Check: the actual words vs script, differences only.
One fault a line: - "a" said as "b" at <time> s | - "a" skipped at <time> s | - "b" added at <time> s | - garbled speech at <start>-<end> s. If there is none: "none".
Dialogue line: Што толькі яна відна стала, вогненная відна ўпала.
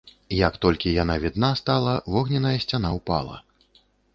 - "Што" said as "Як" at 0.3 s
- "відна" said as "сцяна" at 2.7 s